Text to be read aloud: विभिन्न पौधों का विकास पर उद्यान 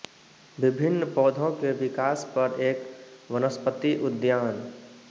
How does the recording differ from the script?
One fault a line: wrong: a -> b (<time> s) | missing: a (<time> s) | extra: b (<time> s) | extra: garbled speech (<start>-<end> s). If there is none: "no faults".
wrong: का -> के (1.6 s)
extra: एक वनस्पति (2.6 s)